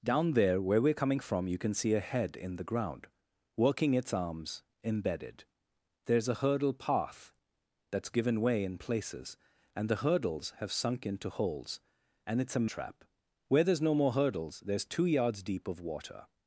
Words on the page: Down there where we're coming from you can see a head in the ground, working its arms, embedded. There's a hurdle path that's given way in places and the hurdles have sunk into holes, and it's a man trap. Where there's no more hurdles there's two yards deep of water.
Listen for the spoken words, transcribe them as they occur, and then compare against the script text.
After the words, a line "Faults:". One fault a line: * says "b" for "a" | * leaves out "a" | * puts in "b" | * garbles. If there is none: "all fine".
Down there where we're coming from you can see a head in the ground, working its arms, embedded. There's a hurdle path that's given way in places and the hurdles have sunk into holes, and it's a trap. Where there's no more hurdles there's two yards deep of water.
Faults:
* leaves out "man"